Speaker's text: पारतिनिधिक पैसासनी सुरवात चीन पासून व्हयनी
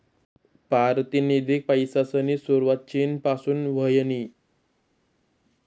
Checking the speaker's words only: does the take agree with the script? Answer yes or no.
yes